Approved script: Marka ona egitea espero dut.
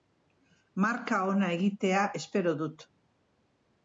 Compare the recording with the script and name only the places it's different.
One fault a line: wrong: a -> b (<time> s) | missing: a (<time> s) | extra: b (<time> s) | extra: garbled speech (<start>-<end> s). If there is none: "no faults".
no faults